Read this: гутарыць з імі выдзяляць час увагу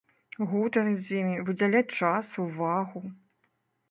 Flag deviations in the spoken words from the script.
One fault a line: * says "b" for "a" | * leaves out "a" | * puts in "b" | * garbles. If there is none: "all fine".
all fine